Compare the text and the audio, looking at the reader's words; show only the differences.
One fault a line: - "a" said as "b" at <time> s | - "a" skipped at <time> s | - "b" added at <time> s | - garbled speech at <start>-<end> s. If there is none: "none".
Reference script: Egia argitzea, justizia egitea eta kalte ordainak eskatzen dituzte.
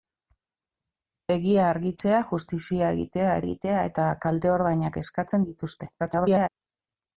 - "egitea" added at 3.4 s
- garbled speech at 6.0-6.5 s